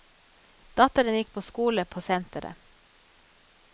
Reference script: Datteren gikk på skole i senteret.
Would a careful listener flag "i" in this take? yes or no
yes